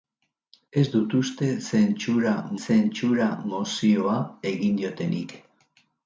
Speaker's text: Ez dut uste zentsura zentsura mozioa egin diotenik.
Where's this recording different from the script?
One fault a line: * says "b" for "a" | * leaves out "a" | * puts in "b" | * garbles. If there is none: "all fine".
all fine